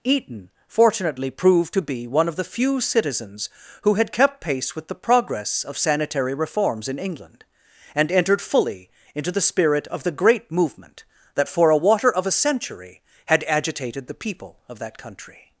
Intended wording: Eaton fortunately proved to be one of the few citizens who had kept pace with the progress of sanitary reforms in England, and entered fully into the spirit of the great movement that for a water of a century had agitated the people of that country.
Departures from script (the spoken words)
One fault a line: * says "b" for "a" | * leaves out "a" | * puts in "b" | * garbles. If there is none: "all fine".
all fine